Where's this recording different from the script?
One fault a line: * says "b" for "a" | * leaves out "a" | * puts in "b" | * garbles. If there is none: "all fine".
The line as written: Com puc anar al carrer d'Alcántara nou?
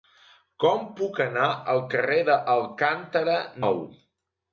all fine